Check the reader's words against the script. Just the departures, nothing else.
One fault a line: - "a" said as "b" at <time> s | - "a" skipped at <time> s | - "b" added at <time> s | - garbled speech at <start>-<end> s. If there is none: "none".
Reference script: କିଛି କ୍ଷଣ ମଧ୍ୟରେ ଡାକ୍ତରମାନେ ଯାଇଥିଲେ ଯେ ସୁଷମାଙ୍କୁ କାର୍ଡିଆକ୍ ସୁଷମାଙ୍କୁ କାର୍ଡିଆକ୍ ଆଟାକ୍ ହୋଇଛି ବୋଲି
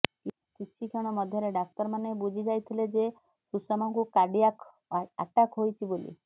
- "ବୁଝି" added at 2.2 s
- "ସୁଷମାଙ୍କୁ କାର୍ଡିଆକ୍" skipped at 4.7 s